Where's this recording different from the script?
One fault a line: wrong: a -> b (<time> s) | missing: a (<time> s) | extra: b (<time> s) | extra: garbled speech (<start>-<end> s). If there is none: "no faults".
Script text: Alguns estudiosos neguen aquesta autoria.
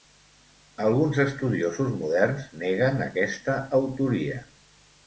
extra: moderns (2.0 s)